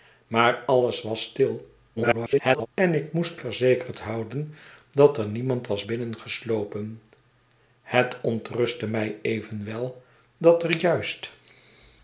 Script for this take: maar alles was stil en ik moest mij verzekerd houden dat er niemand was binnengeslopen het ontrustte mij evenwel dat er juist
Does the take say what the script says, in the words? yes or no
no